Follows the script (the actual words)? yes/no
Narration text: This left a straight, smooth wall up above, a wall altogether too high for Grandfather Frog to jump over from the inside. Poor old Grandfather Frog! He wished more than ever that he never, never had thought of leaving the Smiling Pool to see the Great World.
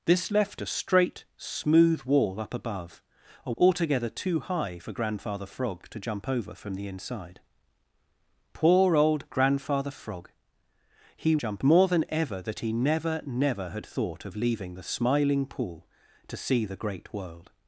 no